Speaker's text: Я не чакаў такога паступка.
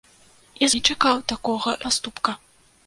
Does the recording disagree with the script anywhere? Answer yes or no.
no